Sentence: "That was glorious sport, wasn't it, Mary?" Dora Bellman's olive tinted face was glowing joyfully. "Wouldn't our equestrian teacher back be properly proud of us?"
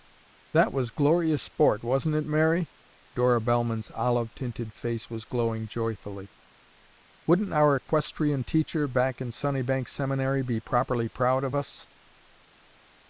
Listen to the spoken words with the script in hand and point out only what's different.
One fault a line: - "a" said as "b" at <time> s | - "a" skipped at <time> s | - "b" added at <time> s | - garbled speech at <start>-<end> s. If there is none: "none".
- "in Sunnybank Seminary" added at 9.2 s